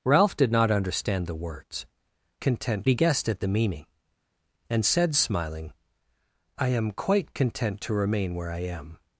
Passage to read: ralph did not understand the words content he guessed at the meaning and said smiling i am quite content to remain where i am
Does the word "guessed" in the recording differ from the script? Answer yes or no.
no